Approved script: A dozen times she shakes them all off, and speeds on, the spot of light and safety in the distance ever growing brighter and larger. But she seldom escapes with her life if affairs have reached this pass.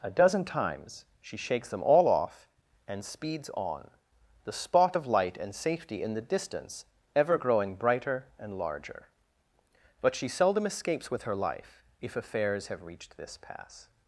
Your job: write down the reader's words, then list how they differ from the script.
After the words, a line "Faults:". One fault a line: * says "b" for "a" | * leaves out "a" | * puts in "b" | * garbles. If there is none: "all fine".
A dozen times she shakes them all off, and speeds on, the spot of light and safety in the distance ever growing brighter and larger. But she seldom escapes with her life if affairs have reached this pass.
Faults:
all fine